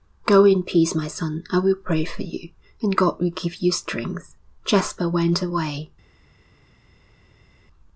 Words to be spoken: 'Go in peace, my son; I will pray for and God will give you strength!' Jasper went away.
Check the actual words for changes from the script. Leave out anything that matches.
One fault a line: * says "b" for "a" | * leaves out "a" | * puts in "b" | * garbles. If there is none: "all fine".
* puts in "you"